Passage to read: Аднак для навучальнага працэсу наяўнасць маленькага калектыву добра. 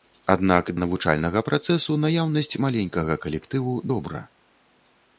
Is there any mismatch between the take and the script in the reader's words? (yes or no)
yes